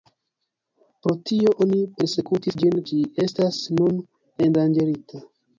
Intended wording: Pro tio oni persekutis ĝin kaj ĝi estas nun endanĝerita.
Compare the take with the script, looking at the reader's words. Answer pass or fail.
fail